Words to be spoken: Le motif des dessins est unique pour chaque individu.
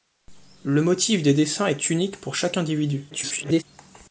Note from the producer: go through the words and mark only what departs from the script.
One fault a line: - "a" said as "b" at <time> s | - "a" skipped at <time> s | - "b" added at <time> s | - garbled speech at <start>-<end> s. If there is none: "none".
- garbled speech at 3.1-3.6 s